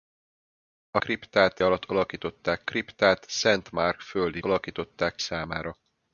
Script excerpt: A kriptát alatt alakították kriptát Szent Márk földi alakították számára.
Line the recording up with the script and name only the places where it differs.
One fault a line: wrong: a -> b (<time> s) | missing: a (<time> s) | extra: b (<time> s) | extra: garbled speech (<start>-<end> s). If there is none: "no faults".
no faults